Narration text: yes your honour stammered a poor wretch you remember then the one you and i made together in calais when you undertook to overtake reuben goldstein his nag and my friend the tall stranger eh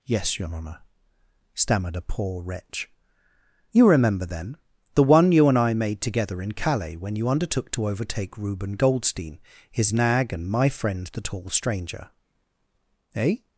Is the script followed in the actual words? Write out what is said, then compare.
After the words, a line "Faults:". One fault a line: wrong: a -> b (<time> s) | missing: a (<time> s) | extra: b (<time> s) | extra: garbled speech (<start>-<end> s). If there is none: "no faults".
yes your honour stammered a poor wretch you remember then the one you and i made together in calais when you undertook to overtake reuben goldstein his nag and my friend the tall stranger eh
Faults:
no faults